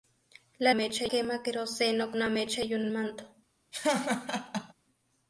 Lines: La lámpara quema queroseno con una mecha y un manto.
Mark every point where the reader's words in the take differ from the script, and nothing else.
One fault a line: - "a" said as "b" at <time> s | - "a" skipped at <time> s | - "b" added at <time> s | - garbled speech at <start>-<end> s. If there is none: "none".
- "lámpara" said as "mecha" at 0.7 s
- "con" skipped at 2.1 s
- "un" added at 2.8 s